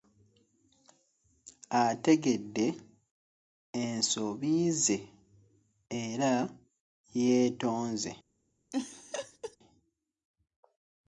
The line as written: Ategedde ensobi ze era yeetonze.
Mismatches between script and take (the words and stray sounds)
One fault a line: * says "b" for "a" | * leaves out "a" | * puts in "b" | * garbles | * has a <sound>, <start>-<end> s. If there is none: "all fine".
* has a laugh, 8.7-9.6 s